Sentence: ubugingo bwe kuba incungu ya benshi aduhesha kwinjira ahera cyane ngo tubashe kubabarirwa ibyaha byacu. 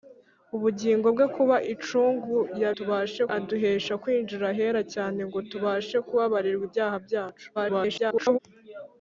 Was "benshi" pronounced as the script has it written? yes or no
no